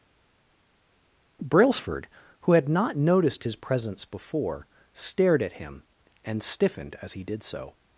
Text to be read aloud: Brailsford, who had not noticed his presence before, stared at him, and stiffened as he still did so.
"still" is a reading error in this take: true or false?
true